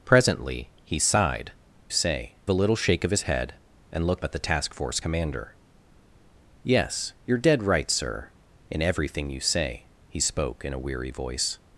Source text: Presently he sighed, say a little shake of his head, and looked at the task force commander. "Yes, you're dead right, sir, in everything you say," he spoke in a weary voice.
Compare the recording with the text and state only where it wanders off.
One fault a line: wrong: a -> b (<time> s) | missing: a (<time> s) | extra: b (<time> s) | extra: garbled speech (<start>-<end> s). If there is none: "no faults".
no faults